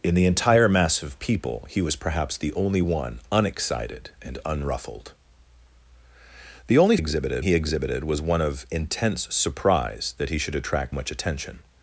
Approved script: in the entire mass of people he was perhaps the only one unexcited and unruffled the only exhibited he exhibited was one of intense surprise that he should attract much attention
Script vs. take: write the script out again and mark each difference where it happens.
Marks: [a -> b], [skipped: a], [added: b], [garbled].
in the entire mass of people he was perhaps the only one unexcited and unruffled the only exhibited he exhibited was one of intense surprise that he should attract much attention